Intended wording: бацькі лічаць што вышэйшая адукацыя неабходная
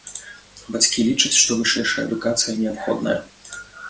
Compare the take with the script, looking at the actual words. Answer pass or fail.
pass